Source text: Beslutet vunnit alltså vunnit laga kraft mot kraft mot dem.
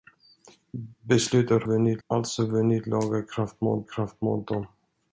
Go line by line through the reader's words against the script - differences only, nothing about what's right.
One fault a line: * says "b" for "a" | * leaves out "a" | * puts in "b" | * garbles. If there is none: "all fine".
all fine